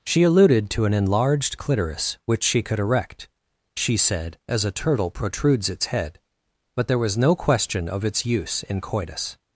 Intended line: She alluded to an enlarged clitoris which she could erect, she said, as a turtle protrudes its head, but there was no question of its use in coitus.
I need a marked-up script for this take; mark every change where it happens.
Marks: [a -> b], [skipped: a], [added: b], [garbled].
She alluded to an enlarged clitoris which she could erect, she said, as a turtle protrudes its head, but there was no question of its use in coitus.